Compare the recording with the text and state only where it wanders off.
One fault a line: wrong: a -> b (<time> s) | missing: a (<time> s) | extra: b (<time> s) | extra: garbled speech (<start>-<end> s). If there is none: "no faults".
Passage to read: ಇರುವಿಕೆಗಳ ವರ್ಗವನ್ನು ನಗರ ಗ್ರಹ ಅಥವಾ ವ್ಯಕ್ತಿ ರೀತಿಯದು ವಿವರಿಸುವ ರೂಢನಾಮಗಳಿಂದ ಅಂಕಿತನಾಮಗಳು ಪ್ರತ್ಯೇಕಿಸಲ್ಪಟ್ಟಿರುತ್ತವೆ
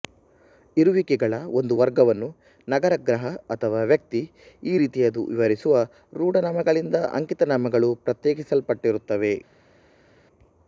extra: ಒಂದು (1.6 s)
extra: ಈ (4.6 s)